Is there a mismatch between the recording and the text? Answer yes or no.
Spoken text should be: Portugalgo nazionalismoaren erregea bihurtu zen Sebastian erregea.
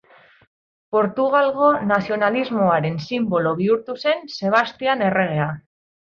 yes